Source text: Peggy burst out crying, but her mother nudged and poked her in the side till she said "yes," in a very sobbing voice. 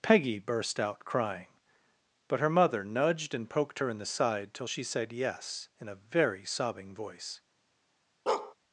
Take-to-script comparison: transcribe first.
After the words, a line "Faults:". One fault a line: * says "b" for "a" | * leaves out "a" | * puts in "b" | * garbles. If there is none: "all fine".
Peggy burst out crying, but her mother nudged and poked her in the side till she said "yes," in a very sobbing voice.
Faults:
all fine